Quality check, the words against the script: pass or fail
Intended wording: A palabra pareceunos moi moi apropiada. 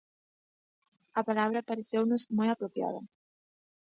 fail